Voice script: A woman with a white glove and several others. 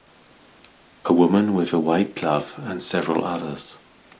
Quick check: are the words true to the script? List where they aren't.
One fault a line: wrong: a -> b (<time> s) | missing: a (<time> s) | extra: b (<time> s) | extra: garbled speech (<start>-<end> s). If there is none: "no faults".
no faults